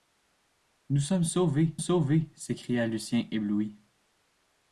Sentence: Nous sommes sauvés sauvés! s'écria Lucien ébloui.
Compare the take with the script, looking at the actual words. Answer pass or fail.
pass